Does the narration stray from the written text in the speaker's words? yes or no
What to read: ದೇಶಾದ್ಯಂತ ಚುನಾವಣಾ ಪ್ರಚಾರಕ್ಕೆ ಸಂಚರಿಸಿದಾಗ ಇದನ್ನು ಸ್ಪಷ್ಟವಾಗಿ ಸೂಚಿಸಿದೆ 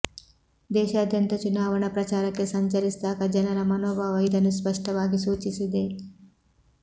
yes